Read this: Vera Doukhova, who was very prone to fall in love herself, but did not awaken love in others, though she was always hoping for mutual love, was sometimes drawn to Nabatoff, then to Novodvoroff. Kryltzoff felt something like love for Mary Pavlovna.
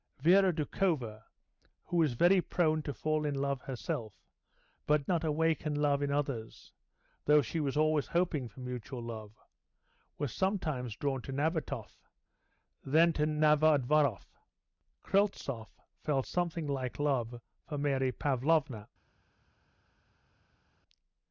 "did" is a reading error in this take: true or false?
true